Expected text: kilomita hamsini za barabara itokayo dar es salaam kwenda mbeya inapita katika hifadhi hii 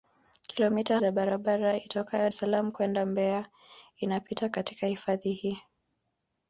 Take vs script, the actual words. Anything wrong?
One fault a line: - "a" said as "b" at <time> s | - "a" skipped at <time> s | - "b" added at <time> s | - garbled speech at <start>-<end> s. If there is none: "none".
- "hamsini" skipped at 1.0 s
- "dar" skipped at 2.3 s